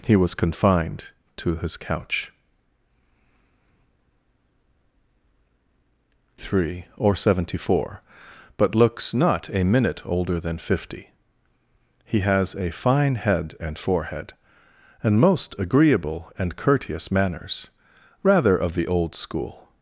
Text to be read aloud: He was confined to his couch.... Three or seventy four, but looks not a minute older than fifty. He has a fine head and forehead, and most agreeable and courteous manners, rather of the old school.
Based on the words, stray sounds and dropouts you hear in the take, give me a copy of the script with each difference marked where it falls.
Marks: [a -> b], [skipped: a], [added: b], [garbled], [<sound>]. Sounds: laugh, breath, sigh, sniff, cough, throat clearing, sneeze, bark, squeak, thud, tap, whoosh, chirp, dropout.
He was confined to his couch.... Three or seventy four, but looks not a minute older than fifty. He has a fine head and forehead, and most agreeable and courteous manners, rather of the old school.